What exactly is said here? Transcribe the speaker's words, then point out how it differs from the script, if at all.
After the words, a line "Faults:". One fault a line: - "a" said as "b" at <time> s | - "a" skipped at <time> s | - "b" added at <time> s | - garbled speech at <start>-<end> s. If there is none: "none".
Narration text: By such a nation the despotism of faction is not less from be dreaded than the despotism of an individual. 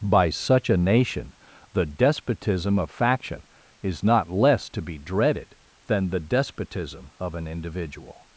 By such a nation the despotism of faction is not less to be dreaded than the despotism of an individual.
Faults:
- "from" said as "to" at 4.7 s